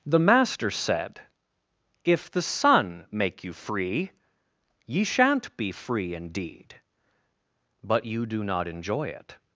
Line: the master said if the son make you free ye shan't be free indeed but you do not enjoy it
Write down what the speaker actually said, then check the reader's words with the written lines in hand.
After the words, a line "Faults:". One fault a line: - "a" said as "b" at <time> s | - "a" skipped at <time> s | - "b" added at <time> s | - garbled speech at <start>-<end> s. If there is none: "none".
the master said if the son make you free ye shan't be free indeed but you do not enjoy it
Faults:
none